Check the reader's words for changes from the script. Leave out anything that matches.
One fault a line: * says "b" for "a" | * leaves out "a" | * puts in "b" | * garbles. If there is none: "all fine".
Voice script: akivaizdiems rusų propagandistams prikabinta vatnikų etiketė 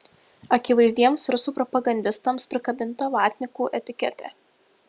all fine